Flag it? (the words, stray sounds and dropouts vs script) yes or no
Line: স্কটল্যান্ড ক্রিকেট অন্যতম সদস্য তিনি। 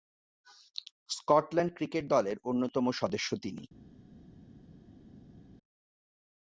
yes